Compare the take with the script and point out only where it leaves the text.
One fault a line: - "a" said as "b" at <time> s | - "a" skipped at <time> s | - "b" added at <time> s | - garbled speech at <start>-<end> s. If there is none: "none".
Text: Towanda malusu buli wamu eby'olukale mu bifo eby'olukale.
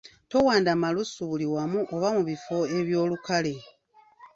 - "eby'olukale" said as "oba" at 1.9 s